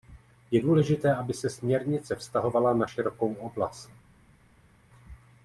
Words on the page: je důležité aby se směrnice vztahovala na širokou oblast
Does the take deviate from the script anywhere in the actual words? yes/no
no